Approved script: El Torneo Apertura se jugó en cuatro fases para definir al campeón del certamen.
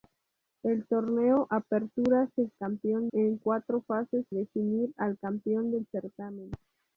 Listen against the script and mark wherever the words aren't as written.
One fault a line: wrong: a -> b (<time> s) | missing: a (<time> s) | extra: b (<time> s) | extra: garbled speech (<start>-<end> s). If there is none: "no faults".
wrong: jugó -> campeón (2.6 s)
missing: para (4.3 s)